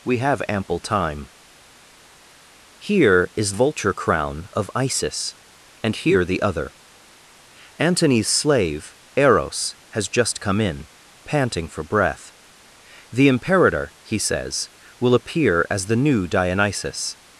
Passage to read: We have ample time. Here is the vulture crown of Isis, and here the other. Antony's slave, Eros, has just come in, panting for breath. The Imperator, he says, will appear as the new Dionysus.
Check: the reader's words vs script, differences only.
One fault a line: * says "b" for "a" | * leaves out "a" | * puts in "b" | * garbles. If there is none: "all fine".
* leaves out "the"